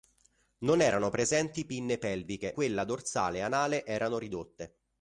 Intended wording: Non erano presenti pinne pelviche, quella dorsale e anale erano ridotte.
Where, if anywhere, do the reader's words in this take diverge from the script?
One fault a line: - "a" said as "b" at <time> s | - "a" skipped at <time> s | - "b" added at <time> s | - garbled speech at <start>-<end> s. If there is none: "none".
none